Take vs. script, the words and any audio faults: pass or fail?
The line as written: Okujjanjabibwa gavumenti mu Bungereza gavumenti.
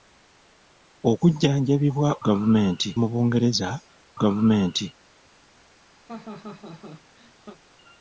fail